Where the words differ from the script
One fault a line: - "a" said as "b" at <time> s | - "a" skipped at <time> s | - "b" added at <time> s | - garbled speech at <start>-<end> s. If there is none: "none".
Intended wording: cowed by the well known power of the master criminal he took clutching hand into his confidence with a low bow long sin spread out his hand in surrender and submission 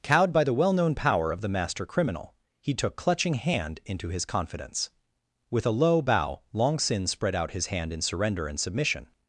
none